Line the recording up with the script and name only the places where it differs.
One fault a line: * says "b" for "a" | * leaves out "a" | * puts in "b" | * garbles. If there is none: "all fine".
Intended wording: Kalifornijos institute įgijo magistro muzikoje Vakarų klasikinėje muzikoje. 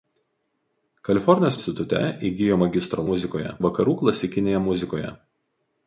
all fine